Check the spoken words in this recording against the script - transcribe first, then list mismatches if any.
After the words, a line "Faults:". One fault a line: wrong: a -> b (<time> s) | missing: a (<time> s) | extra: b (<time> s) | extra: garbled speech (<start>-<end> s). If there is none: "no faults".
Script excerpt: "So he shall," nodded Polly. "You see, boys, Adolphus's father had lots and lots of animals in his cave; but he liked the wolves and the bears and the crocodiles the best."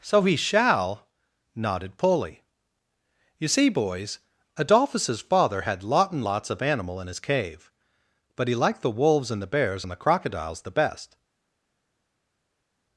"So he shall," nodded Polly. "You see, boys, Adolphus's father had lot and lots of animal in his cave; but he liked the wolves and the bears and the crocodiles the best."
Faults:
wrong: lots -> lot (5.8 s)
wrong: animals -> animal (6.6 s)